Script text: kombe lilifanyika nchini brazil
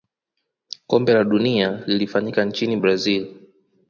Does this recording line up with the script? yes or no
no